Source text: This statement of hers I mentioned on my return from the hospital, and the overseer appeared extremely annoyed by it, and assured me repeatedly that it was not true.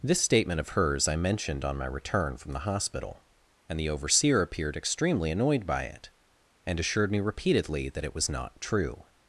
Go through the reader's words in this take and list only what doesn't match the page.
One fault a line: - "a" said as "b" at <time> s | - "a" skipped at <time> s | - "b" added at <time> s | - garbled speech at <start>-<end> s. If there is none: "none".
none